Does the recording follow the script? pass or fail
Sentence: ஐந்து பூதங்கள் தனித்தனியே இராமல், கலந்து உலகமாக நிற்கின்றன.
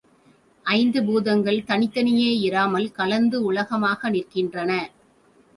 pass